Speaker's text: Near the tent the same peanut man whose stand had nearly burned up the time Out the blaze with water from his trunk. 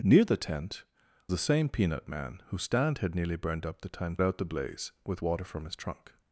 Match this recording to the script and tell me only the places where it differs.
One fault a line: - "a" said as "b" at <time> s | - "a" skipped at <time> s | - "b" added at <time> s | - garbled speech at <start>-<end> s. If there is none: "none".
none